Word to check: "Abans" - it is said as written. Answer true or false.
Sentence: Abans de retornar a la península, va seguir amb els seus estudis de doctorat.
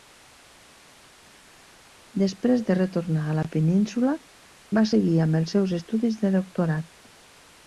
false